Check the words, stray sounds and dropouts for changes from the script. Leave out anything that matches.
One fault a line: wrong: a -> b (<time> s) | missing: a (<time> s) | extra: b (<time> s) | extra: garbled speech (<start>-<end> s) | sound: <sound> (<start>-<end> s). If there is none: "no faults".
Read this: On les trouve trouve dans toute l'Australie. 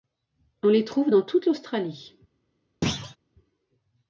missing: trouve (1.1 s)
sound: thud (2.8-3.2 s)